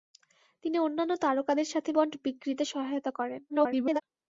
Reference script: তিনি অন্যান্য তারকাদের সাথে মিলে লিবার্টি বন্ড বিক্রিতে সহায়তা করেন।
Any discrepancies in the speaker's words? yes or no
yes